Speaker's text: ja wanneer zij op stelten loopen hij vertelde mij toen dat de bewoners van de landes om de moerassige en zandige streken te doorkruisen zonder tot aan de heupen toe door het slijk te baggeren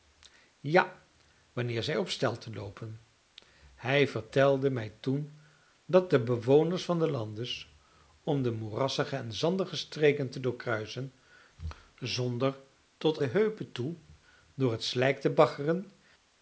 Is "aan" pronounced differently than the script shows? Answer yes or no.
yes